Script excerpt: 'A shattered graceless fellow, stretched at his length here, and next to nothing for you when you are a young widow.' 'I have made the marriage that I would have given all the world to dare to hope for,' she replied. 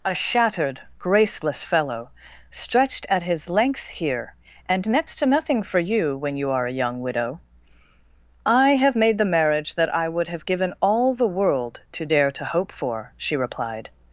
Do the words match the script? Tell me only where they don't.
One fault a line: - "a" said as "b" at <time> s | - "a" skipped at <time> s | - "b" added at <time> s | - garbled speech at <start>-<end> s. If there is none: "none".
none